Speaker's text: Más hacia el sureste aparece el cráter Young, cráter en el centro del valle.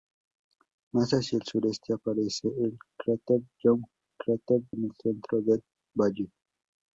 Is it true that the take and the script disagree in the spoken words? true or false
false